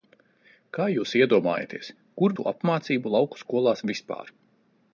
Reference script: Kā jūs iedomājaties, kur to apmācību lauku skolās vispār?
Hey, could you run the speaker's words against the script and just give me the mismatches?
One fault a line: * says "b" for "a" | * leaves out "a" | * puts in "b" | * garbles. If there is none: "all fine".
all fine